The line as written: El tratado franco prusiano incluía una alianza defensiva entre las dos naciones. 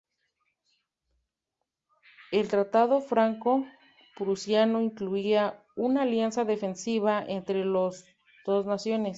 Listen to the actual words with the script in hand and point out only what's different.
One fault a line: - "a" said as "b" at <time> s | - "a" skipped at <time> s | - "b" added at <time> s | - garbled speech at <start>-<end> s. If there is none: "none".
none